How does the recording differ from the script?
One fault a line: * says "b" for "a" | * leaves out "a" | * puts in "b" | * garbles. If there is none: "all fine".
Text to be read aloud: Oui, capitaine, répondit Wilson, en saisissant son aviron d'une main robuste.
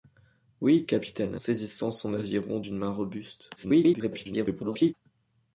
* leaves out "répondit Wilson en"
* garbles